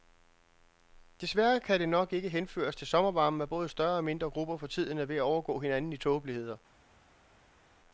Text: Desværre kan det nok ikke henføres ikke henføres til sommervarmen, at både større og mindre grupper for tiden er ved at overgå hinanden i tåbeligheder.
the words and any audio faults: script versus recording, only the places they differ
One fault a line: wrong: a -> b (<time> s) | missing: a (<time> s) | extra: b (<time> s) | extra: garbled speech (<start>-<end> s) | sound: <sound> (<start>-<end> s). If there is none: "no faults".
missing: ikke henføres (2.8 s)